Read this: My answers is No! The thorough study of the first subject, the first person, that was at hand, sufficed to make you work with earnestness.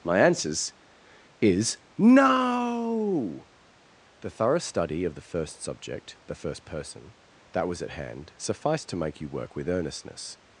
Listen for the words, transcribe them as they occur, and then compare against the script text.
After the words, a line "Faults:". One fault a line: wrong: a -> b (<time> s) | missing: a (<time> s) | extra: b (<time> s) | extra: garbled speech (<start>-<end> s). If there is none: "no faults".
My answers is No! The thorough study of the first subject, the first person, that was at hand, sufficed to make you work with earnestness.
Faults:
no faults